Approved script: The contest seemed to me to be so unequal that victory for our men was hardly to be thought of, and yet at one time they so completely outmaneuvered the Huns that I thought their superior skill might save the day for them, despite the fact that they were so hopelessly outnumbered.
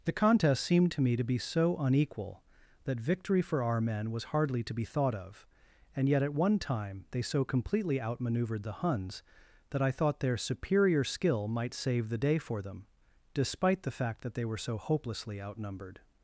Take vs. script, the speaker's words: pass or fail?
pass